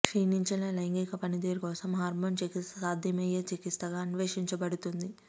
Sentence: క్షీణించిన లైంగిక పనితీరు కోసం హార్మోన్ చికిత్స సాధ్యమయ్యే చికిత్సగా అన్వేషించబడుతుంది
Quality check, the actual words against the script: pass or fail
pass